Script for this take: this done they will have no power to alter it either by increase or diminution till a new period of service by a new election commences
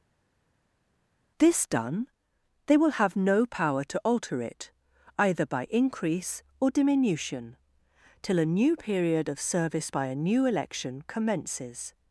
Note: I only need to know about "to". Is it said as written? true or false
true